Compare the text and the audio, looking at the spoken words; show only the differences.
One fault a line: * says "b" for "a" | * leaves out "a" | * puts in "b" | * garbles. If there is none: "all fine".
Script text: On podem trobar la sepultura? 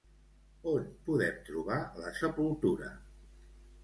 all fine